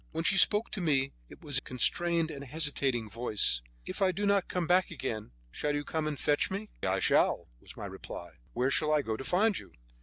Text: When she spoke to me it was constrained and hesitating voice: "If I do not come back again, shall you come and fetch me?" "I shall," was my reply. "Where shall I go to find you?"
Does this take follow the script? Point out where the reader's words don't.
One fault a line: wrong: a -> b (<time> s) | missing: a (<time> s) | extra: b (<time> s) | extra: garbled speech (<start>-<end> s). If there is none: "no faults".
no faults